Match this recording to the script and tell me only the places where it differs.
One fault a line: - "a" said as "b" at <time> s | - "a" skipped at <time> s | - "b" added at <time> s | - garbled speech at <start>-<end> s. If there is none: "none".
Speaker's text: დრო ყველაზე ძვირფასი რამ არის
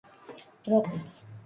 - "ყველაზე ძვირფასი რამ" skipped at 0.8 s